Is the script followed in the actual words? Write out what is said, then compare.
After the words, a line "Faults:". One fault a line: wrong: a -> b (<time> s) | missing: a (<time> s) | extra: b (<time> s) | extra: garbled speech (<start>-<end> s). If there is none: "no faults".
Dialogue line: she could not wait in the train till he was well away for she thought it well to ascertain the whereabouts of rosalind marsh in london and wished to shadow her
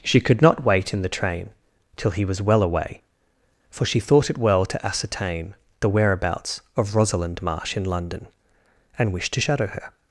she could not wait in the train till he was well away for she thought it well to ascertain the whereabouts of rosalind marsh in london and wished to shadow her
Faults:
no faults